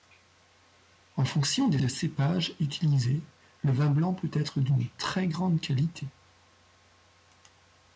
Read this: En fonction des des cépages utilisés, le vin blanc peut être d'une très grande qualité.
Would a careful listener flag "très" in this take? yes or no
no